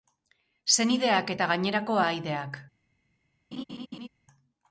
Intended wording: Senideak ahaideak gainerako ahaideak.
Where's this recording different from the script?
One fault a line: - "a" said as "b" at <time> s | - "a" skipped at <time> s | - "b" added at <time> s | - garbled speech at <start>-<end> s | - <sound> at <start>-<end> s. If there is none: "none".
- "ahaideak" said as "eta" at 1.3 s
- laugh at 3.5-4.1 s